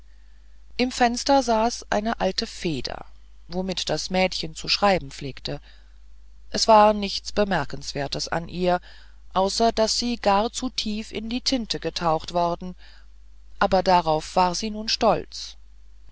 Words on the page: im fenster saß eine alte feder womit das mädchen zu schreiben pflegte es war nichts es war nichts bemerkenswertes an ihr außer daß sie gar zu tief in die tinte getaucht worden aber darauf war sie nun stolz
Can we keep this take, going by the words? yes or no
no